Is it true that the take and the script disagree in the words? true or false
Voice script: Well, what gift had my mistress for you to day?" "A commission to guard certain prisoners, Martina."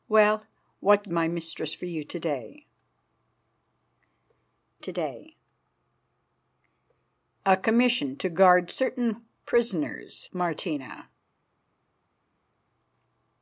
true